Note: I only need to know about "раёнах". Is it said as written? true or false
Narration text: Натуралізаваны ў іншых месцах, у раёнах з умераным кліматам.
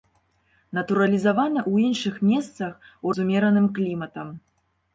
false